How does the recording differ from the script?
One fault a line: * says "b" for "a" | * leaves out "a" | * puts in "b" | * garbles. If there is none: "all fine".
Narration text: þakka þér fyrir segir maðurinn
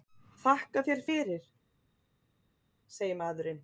all fine